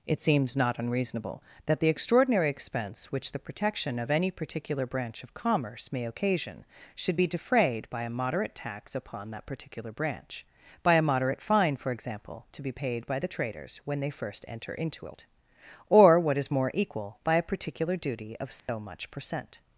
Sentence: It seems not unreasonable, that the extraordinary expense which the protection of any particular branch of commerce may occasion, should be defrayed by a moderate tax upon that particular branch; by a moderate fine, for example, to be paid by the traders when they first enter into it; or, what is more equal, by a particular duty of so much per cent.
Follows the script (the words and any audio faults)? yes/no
no